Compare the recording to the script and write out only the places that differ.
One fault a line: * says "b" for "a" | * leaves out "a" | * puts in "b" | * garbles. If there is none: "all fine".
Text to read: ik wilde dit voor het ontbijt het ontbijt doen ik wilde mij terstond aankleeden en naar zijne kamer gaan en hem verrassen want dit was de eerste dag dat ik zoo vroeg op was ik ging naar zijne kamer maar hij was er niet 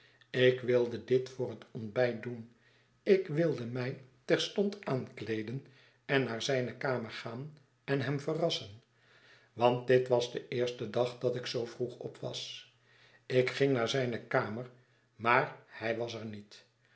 * leaves out "het ontbijt"